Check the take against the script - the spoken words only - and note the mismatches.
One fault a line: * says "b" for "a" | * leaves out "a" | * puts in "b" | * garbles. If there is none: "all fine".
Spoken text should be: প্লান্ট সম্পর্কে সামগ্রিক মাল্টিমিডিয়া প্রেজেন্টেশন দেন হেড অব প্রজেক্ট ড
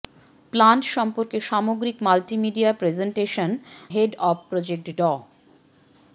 * leaves out "দেন"